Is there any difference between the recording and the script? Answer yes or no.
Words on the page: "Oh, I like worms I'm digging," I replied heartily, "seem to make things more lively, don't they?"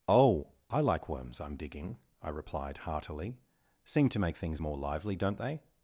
no